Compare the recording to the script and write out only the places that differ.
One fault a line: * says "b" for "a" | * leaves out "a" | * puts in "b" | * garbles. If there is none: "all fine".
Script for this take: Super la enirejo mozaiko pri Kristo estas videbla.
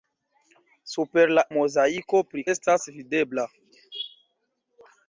* leaves out "enirejo"
* leaves out "Kristo"